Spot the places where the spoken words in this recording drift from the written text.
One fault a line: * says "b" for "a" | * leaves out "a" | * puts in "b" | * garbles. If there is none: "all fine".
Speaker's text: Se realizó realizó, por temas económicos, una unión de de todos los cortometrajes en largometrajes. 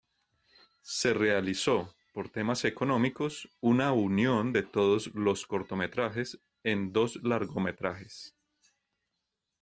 * leaves out "realizó"
* leaves out "de"
* puts in "dos"